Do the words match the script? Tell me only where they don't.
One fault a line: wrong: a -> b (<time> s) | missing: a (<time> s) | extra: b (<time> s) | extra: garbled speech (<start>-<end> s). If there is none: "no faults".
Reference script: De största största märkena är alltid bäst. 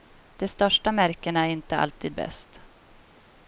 missing: största (0.9 s)
extra: inte (1.5 s)